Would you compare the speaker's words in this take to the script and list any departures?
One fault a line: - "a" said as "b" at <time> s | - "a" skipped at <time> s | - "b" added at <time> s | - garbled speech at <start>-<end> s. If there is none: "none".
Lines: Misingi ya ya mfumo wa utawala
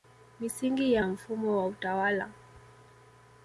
none